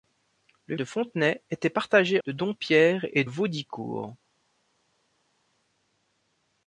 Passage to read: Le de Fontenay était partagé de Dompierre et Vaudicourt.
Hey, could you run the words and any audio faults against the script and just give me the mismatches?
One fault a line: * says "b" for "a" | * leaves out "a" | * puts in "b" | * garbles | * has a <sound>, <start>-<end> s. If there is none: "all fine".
all fine